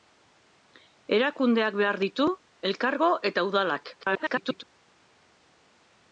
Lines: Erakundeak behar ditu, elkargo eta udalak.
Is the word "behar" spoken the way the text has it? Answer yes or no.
yes